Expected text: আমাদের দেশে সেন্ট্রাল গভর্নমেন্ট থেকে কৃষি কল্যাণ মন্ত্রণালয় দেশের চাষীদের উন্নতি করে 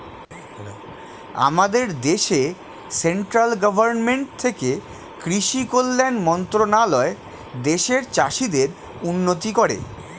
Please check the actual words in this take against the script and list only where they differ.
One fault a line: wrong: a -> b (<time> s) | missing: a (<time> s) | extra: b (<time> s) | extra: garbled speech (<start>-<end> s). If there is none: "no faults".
no faults